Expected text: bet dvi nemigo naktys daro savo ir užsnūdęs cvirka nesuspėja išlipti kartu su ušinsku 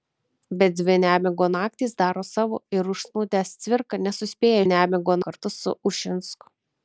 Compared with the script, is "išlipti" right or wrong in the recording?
wrong